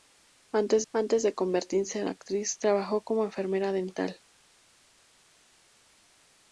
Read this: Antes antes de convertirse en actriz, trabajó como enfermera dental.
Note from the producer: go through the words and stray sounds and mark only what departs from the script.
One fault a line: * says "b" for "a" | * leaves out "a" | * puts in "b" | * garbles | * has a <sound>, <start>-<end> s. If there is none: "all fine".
all fine